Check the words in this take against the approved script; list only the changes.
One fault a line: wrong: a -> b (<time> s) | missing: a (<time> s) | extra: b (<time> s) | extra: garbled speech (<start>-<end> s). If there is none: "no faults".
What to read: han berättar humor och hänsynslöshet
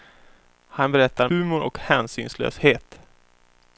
no faults